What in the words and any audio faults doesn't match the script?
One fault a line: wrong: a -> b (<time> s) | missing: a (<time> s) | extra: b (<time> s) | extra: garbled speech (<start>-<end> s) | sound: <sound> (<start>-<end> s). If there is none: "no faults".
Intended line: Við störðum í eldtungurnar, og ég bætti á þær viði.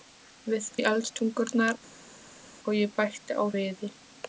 missing: störðum (0.7 s)
missing: þær (3.4 s)